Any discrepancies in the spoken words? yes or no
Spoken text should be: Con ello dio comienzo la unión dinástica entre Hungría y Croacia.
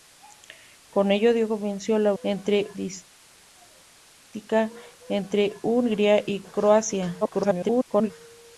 yes